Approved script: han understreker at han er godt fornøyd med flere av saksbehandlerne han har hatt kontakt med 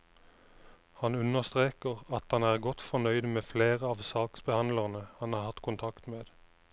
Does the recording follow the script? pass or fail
pass